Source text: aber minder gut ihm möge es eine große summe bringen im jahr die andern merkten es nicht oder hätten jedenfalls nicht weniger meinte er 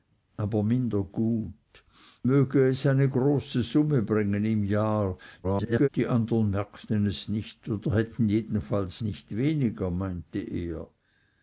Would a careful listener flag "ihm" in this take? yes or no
yes